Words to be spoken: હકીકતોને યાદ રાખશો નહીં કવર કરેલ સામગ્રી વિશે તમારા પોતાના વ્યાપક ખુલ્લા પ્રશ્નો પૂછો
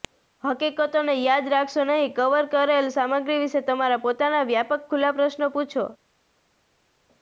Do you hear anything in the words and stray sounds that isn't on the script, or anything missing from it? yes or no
no